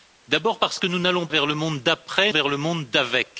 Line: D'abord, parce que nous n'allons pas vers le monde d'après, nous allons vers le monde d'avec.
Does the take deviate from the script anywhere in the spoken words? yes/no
yes